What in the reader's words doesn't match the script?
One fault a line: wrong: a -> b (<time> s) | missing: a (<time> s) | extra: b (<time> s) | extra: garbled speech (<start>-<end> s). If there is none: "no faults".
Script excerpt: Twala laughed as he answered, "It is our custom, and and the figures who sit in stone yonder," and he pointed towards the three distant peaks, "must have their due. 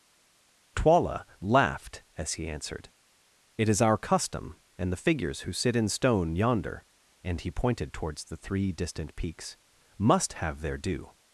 missing: and (4.9 s)